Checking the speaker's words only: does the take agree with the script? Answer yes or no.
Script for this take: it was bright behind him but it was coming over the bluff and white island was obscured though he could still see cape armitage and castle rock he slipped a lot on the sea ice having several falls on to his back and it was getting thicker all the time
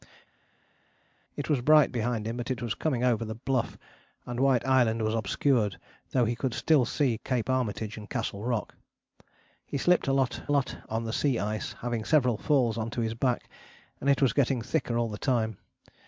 no